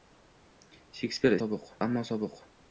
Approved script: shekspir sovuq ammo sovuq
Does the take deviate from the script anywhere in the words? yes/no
no